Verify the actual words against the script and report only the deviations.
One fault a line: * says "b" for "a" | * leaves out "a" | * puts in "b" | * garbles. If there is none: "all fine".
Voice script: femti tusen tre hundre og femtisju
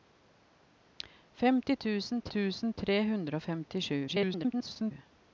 * puts in "tusen"
* garbles